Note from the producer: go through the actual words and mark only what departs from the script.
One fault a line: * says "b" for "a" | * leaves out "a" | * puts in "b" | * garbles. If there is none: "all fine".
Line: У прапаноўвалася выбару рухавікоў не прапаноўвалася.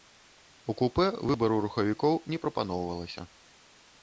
* says "купэ" for "прапаноўвалася"